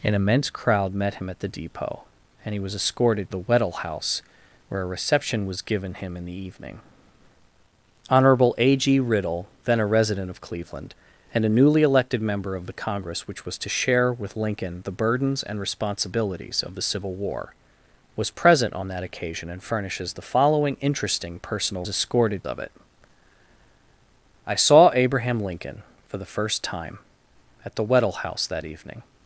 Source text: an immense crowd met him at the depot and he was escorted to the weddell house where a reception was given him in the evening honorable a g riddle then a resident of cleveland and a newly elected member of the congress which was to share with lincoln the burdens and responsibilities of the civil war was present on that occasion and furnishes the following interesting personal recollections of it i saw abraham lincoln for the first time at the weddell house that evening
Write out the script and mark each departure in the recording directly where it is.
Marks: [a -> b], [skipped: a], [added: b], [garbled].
an immense crowd met him at the depot and he was escorted [skipped: to] the weddell house where a reception was given him in the evening honorable a g riddle then a resident of cleveland and a newly elected member of the congress which was to share with lincoln the burdens and responsibilities of the civil war was present on that occasion and furnishes the following interesting personal [recollections -> escorted] of it i saw abraham lincoln for the first time at the weddell house that evening